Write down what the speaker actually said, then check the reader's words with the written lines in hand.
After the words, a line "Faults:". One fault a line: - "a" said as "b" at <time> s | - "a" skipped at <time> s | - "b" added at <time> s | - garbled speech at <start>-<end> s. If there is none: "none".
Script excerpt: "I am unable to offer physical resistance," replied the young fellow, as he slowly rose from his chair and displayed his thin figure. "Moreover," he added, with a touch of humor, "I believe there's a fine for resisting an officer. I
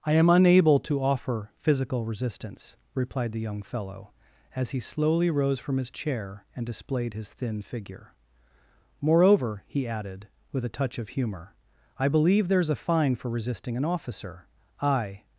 "I am unable to offer physical resistance," replied the young fellow, as he slowly rose from his chair and displayed his thin figure. "Moreover," he added, with a touch of humor, "I believe there's a fine for resisting an officer. I
Faults:
none